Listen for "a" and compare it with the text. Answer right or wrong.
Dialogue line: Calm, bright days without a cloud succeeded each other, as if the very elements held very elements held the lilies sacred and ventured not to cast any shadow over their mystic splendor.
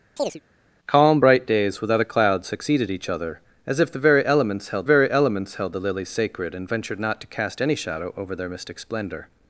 right